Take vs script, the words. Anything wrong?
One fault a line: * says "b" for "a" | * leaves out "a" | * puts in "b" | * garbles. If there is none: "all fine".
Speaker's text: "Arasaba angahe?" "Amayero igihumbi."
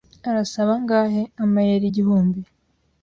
all fine